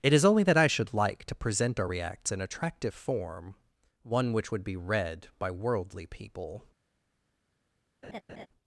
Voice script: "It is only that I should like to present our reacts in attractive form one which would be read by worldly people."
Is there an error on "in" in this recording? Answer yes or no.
no